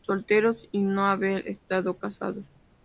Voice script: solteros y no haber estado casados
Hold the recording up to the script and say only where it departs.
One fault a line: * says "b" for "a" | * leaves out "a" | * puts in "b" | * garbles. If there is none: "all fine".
all fine